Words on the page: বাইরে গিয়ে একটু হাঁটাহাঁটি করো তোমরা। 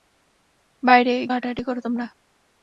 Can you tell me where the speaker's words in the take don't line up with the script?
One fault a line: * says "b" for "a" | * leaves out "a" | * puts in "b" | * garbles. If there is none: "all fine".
* leaves out "গিয়ে একটু"